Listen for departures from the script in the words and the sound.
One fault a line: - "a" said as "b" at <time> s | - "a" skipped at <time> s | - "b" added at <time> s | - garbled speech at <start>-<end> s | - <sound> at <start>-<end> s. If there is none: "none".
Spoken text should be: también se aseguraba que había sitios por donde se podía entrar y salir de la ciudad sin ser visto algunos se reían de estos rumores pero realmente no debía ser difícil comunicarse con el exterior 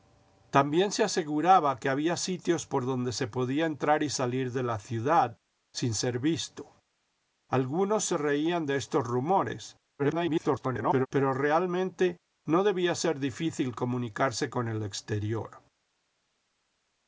- garbled speech at 10.0-11.1 s